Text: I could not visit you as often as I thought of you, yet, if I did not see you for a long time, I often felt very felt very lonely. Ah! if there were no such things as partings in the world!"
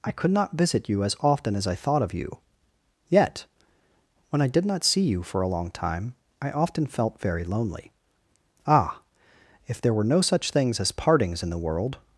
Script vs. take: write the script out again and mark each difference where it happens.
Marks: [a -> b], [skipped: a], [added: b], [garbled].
I could not visit you as often as I thought of you, yet, [if -> when] I did not see you for a long time, I often felt very [skipped: felt very] lonely. Ah! if there were no such things as partings in the world!"